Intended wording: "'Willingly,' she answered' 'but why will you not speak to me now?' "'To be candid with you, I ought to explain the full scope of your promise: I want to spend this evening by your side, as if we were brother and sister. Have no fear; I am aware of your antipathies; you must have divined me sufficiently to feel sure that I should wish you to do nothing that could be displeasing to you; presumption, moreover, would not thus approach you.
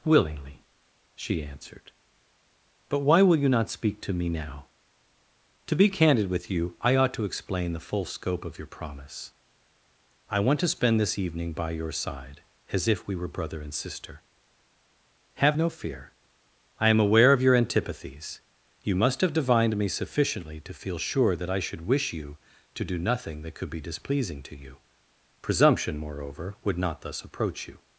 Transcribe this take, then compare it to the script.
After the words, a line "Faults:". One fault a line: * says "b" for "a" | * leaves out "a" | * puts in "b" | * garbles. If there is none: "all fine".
"'Willingly,' she answered' 'but why will you not speak to me now?' "'To be candid with you, I ought to explain the full scope of your promise: I want to spend this evening by your side, as if we were brother and sister. Have no fear; I am aware of your antipathies; you must have divined me sufficiently to feel sure that I should wish you to do nothing that could be displeasing to you; presumption, moreover, would not thus approach you.
Faults:
all fine